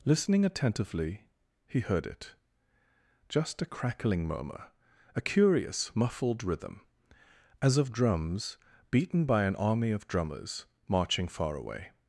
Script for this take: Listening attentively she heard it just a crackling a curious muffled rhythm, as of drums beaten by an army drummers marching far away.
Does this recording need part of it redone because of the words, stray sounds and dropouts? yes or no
yes